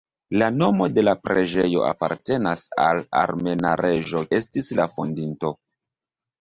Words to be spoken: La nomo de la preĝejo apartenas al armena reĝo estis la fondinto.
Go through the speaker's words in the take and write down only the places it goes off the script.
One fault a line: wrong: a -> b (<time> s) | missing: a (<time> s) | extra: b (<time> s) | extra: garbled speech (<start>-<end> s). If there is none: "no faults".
no faults